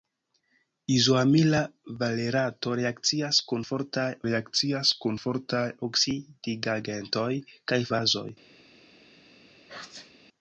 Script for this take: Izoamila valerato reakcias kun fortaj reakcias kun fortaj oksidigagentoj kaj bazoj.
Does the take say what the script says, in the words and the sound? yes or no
no